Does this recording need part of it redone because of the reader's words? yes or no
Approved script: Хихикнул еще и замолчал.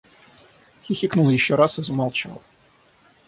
yes